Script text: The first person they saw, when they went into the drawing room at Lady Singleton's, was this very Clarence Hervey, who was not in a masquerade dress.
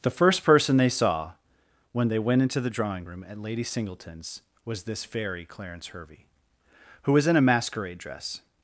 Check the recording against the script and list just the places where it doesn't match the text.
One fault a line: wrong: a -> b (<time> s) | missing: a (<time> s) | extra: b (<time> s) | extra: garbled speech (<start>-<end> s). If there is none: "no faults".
missing: not (7.3 s)